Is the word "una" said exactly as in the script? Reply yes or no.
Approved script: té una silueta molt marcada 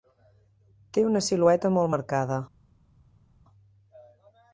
yes